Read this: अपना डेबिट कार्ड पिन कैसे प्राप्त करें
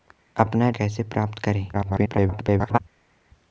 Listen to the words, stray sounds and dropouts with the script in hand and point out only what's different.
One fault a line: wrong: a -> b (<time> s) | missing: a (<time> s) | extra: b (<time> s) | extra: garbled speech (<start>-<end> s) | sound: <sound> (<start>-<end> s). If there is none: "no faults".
missing: डेबिट कार्ड पिन (0.7 s)
extra: garbled speech (1.7-2.8 s)